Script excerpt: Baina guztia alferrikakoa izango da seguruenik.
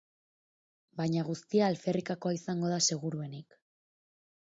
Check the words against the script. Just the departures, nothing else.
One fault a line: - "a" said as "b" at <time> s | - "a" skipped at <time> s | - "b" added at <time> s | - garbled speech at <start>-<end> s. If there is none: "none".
none